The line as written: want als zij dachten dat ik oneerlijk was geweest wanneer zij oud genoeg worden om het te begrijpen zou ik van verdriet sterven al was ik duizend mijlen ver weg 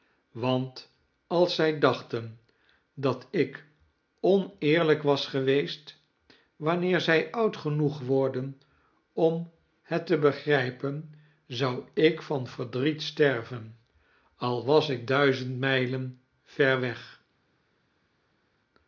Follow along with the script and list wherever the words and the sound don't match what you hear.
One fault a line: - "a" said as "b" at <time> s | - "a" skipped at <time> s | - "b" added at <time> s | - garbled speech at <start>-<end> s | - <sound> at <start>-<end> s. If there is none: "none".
none